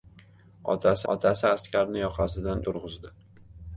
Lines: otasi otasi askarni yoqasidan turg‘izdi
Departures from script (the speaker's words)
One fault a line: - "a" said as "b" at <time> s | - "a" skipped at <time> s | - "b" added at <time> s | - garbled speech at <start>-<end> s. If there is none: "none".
none